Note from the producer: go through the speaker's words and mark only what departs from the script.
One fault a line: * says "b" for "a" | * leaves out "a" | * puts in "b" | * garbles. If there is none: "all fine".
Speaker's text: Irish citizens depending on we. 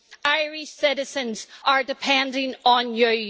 * puts in "are"
* says "you" for "we"